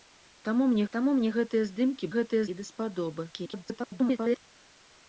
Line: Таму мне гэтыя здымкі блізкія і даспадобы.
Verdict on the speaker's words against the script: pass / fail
fail